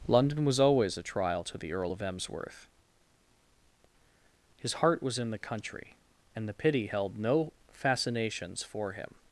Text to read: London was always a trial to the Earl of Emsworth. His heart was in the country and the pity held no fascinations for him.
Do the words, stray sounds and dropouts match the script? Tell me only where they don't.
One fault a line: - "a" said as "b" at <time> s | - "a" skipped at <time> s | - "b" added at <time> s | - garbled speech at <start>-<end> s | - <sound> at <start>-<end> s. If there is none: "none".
none